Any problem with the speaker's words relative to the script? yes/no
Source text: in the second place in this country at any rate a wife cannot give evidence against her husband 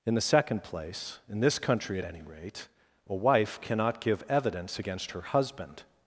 no